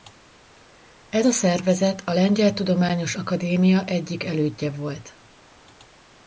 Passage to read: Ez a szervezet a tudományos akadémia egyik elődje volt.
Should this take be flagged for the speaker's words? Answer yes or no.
yes